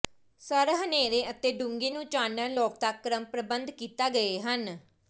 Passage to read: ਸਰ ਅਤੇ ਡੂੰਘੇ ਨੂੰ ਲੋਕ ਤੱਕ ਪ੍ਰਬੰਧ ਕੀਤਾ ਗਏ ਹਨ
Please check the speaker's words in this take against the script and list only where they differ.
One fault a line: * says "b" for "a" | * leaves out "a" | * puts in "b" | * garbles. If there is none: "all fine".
* puts in "ਹਨੇਰੇ"
* puts in "ਚਾਨਣ"
* puts in "ਕ੍ਰਮ"